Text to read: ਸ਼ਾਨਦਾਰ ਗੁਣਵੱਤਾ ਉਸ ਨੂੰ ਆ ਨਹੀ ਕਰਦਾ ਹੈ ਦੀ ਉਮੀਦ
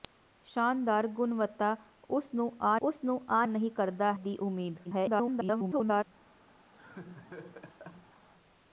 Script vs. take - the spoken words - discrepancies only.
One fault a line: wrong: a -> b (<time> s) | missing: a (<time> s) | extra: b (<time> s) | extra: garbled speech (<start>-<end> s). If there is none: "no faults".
extra: ਉਸ ਨੂੰ ਆ (2.8 s)
missing: ਹੈ (4.1 s)
extra: garbled speech (4.8-6.0 s)